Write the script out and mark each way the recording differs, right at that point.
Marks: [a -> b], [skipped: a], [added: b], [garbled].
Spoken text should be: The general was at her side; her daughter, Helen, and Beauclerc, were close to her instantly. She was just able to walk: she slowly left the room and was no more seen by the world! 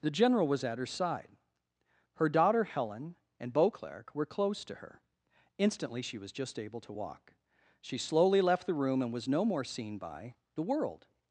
The general was at her side; her daughter, Helen, and Beauclerc, were close to her instantly. She was just able to walk: she slowly left the room and was no more seen by the world!